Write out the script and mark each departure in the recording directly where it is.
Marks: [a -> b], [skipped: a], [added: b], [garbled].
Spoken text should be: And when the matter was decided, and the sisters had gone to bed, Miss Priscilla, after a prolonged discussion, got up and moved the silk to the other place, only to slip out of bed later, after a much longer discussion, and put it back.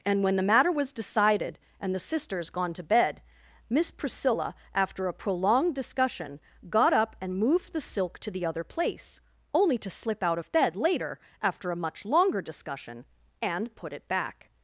And when the matter was decided, and the sisters [skipped: had] gone to bed, Miss Priscilla, after a prolonged discussion, got up and moved the silk to the other place, only to slip out of bed later, after a much longer discussion, and put it back.